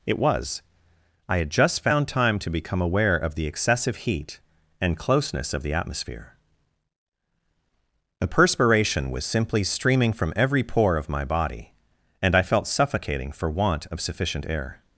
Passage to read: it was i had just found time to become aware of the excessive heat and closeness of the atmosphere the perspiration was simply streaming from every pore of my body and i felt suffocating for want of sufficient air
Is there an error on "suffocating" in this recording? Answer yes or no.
no